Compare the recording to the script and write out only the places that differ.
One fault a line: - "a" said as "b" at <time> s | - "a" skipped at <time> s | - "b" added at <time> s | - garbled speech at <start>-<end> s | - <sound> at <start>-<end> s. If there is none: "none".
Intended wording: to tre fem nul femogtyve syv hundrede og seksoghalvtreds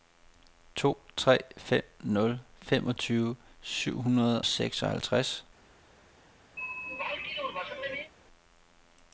- "og" skipped at 4.4 s
- throat clearing at 6.6-8.1 s